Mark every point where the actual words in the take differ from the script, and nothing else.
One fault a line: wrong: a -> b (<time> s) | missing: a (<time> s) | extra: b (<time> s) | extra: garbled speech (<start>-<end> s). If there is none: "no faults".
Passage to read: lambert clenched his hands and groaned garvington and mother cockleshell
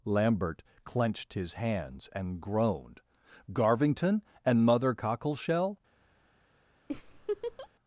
no faults